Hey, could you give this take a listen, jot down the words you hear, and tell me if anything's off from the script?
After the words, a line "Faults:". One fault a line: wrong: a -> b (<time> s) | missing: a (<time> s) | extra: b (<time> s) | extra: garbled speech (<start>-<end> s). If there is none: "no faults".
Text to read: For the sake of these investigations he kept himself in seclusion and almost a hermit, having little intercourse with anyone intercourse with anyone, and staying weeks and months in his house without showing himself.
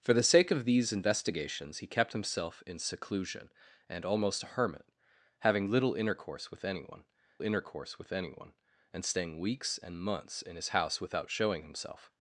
For the sake of these investigations he kept himself in seclusion and almost a hermit, having little intercourse with anyone intercourse with anyone, and staying weeks and months in his house without showing himself.
Faults:
no faults